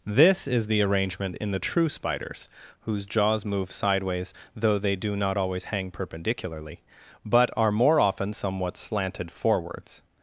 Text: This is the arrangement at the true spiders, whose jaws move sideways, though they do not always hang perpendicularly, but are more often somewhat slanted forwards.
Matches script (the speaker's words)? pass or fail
fail